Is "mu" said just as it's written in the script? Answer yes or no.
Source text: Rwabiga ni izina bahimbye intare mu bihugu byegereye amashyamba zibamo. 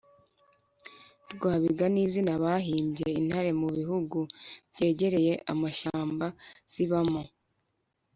yes